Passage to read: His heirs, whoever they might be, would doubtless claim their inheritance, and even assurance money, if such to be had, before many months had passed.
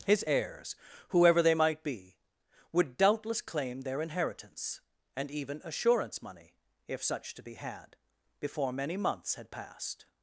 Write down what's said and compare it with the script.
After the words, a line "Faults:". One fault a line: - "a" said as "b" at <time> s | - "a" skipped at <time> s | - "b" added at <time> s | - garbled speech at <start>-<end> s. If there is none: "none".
His heirs, whoever they might be, would doubtless claim their inheritance, and even assurance money, if such to be had, before many months had passed.
Faults:
none